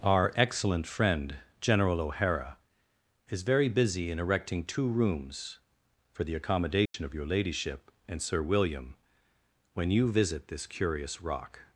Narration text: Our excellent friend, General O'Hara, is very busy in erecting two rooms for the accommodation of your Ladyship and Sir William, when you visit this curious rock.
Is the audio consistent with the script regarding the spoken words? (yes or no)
yes